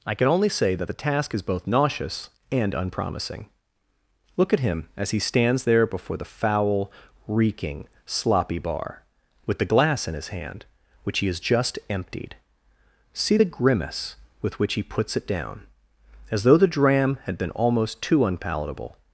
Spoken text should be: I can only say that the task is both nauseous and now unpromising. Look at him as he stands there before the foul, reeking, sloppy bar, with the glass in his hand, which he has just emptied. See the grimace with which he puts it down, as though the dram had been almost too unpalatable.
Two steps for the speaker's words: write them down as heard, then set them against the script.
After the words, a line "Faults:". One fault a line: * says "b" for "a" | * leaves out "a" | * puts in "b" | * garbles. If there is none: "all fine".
I can only say that the task is both nauseous and unpromising. Look at him as he stands there before the foul, reeking, sloppy bar, with the glass in his hand, which he has just emptied. See the grimace with which he puts it down, as though the dram had been almost too unpalatable.
Faults:
* leaves out "now"